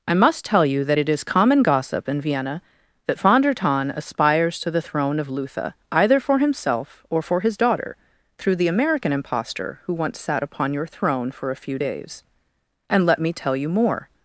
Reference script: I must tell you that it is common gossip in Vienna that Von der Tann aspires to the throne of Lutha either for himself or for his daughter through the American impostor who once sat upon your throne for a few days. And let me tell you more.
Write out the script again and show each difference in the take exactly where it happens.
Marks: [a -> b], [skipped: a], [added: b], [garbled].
I must tell you that it is common gossip in Vienna that Von der Tann aspires to the throne of Lutha either for himself or for his daughter through the American impostor who once sat upon your throne for a few days. And let me tell you more.